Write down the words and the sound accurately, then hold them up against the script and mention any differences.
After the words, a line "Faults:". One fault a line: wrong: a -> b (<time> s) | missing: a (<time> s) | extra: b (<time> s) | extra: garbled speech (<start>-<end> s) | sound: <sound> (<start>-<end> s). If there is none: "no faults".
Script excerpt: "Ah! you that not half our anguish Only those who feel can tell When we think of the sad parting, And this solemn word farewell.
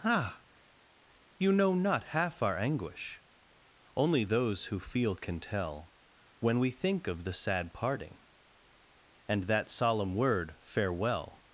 "Ah! you know not half our anguish Only those who feel can tell When we think of the sad parting, And that solemn word farewell.
Faults:
wrong: that -> know (1.5 s)
wrong: this -> that (9.4 s)